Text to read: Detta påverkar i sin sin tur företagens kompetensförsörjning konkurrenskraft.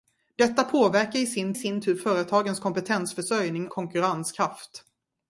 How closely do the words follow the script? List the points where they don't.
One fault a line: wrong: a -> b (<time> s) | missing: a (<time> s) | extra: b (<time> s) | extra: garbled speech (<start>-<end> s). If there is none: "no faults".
no faults